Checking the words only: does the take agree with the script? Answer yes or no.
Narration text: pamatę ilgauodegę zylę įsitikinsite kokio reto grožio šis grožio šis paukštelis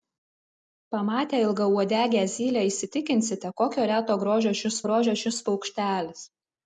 yes